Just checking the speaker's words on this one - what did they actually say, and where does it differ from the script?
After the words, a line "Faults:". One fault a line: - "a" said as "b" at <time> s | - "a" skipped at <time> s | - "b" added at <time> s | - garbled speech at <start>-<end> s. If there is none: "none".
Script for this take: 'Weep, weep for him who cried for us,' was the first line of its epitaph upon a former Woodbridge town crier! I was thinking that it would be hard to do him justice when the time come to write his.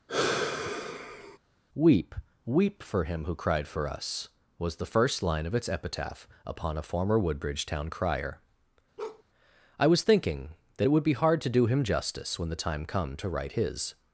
'Weep, weep for him who cried for us,' was the first line of its epitaph upon a former Woodbridge town crier! I was thinking that it would be hard to do him justice when the time come to write his.
Faults:
none